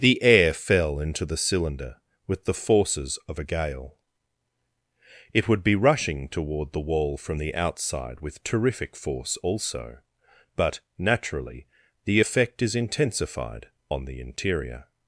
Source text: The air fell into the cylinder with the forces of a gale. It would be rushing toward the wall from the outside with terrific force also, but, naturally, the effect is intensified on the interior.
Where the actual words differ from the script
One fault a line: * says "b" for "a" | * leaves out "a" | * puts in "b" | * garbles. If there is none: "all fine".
all fine